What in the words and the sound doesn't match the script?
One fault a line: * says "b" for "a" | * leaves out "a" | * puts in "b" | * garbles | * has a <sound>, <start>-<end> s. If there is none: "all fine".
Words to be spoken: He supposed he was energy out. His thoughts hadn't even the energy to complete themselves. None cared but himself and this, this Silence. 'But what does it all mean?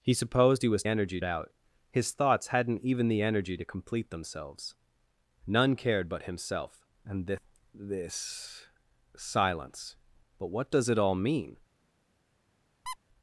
* has a squeak, 12.9-13.0 s